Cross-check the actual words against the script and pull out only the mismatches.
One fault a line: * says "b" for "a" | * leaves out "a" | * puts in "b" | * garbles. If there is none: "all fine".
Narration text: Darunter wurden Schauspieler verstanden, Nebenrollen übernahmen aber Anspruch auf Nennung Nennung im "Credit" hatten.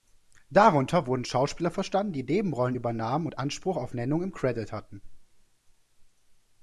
* puts in "die"
* says "und" for "aber"
* leaves out "Nennung"